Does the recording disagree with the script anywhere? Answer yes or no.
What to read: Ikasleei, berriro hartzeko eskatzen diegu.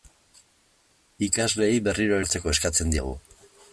no